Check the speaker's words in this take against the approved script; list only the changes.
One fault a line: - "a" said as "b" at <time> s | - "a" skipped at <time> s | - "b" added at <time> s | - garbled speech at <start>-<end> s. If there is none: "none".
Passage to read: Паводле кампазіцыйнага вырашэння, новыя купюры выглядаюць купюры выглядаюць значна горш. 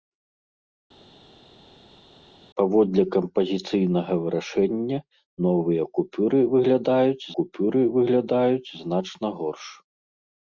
none